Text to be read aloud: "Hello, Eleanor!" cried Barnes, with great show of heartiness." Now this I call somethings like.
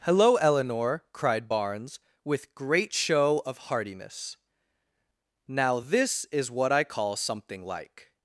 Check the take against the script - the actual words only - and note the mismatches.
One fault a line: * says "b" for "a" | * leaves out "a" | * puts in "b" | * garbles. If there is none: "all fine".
* puts in "is what"
* says "something" for "somethings"